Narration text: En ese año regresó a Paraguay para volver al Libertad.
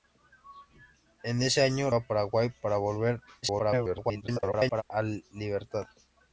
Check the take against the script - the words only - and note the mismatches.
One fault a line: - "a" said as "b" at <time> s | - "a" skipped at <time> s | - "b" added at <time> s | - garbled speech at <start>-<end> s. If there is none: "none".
- "regresó" skipped at 1.9 s
- garbled speech at 3.4-4.8 s